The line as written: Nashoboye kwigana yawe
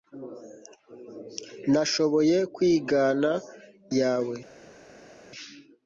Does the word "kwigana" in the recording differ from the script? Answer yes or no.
no